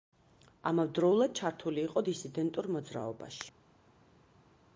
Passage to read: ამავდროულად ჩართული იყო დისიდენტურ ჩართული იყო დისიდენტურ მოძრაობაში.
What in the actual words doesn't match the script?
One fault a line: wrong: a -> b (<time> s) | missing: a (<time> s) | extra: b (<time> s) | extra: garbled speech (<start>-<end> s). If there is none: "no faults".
missing: ჩართული იყო დისიდენტურ (2.7 s)